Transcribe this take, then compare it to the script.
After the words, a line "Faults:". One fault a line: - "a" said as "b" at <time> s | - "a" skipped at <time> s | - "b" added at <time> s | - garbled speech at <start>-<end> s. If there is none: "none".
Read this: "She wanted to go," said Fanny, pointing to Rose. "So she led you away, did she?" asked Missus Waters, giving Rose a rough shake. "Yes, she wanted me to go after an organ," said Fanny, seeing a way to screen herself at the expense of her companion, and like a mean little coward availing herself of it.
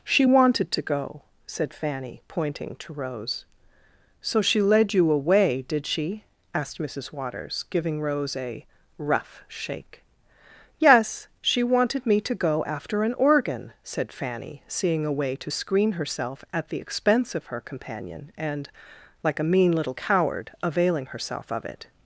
"She wanted to go," said Fanny, pointing to Rose. "So she led you away, did she?" asked Missus Waters, giving Rose a rough shake. "Yes, she wanted me to go after an organ," said Fanny, seeing a way to screen herself at the expense of her companion, and like a mean little coward availing herself of it.
Faults:
none